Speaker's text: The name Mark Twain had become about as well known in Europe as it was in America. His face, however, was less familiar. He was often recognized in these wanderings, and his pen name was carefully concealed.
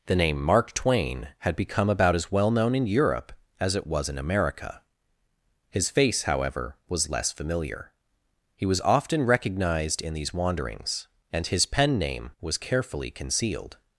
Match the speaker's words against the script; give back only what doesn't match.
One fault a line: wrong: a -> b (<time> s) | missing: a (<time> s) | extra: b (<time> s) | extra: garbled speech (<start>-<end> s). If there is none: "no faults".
no faults